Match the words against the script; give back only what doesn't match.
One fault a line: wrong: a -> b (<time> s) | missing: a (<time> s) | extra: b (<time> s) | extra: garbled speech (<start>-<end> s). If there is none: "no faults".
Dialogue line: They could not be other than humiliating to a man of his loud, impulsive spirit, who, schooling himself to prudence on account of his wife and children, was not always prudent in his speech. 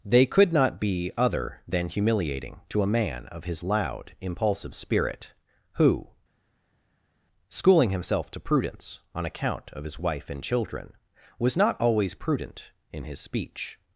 no faults